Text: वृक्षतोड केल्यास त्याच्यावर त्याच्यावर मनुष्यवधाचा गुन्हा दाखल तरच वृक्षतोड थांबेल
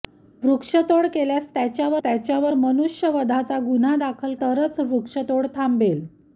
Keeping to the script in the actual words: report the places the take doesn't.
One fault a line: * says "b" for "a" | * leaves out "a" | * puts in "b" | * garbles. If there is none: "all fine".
all fine